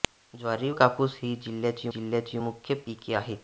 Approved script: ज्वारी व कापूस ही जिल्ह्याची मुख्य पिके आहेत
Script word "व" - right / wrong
wrong